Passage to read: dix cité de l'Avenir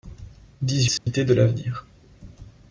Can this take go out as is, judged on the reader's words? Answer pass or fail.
pass